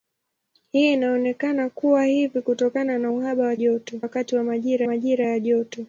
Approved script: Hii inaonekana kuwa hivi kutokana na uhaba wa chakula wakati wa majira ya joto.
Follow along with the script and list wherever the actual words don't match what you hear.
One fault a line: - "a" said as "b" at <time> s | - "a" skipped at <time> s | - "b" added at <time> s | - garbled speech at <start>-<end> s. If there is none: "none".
- "chakula" said as "joto" at 3.5 s
- "majira" added at 4.8 s